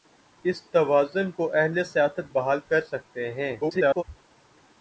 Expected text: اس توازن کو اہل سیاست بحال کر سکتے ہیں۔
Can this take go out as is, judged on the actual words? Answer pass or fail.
fail